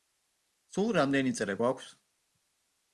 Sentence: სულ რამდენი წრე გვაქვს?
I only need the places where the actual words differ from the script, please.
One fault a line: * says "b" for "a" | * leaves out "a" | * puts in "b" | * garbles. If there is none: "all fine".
all fine